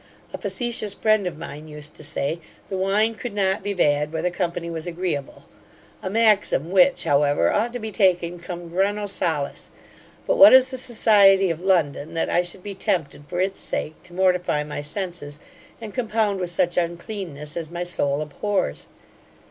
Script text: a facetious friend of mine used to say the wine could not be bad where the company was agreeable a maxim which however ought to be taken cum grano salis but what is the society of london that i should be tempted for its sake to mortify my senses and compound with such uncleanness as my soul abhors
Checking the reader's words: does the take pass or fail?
pass